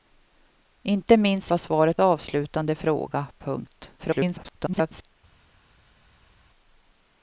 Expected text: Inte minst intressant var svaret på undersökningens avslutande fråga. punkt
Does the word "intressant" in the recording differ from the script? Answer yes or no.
yes